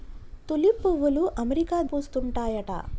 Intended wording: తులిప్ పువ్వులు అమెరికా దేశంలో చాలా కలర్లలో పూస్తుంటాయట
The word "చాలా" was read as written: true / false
false